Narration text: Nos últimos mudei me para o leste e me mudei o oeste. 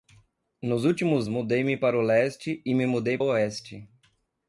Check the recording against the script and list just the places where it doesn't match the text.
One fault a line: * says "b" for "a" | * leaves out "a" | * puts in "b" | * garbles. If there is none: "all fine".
all fine